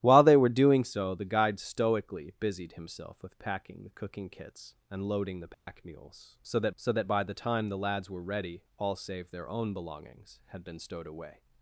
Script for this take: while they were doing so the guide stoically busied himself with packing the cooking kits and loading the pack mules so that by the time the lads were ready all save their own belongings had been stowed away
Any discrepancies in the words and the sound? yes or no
yes